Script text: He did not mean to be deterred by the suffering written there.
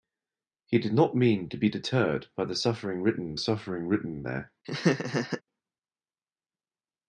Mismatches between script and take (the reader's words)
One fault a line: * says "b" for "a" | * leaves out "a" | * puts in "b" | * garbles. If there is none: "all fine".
* puts in "suffering written"